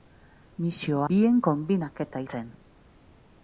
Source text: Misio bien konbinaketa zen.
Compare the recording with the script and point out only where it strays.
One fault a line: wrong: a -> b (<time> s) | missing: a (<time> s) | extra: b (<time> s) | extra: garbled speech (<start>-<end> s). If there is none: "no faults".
no faults